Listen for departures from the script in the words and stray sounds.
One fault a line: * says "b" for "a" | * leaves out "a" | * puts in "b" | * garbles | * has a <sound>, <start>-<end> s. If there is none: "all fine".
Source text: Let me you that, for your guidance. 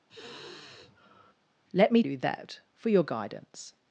* has a sigh, 0.1-1.3 s